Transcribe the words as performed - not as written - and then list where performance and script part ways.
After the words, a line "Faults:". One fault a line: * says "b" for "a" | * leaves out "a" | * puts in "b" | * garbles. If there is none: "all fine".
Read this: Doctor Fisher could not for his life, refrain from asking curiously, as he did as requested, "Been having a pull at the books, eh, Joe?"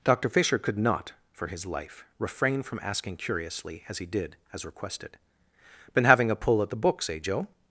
Doctor Fisher could not for his life, refrain from asking curiously, as he did as requested, "Been having a pull at the books, eh, Joe?"
Faults:
all fine